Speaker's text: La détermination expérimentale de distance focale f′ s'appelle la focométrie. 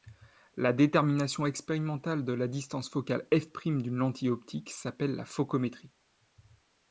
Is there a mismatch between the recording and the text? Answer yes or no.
yes